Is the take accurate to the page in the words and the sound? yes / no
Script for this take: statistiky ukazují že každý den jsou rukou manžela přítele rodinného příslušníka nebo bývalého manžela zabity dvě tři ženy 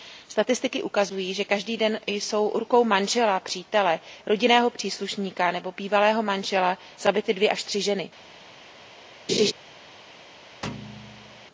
no